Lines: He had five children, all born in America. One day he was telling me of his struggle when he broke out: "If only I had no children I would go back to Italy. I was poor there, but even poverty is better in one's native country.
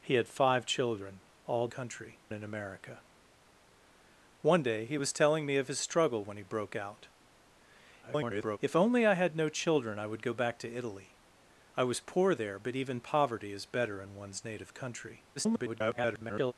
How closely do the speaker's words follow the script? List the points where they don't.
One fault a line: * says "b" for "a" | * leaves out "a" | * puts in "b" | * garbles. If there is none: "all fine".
* says "country" for "born"
* garbles
* garbles